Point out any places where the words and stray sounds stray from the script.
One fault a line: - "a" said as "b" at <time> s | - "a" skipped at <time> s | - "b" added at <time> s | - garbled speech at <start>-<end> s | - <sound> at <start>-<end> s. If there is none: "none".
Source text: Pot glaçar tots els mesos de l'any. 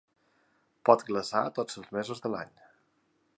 none